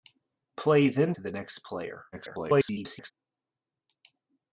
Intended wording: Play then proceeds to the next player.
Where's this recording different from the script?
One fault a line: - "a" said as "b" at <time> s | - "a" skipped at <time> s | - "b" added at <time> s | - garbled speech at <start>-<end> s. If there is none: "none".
- "proceeds" skipped at 1.1 s
- garbled speech at 2.1-3.1 s